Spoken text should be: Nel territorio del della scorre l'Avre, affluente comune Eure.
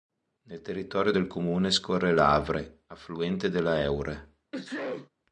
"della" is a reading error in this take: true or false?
true